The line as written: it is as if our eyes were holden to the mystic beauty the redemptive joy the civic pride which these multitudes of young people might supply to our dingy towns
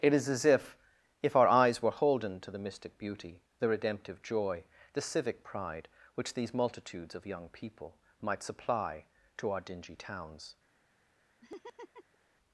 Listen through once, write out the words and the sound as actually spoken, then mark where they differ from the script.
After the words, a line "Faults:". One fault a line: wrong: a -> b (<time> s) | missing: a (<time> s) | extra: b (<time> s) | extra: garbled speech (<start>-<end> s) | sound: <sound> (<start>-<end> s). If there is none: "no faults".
it is as if if our eyes were holden to the mystic beauty the redemptive joy the civic pride which these multitudes of young people might supply to our dingy towns
Faults:
extra: if (1.2 s)
sound: laugh (11.4-12.2 s)